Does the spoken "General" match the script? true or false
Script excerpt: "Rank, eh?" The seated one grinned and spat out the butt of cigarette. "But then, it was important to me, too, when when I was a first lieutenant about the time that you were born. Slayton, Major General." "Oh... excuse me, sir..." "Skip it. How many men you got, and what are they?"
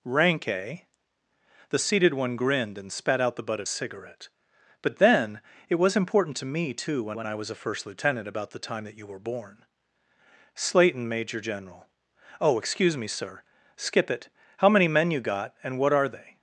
true